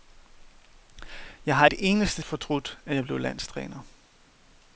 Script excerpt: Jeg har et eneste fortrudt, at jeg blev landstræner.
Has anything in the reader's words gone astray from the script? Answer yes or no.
no